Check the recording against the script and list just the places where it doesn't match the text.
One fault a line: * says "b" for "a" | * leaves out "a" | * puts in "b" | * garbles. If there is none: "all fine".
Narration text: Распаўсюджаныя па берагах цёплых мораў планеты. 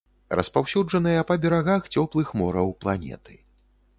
all fine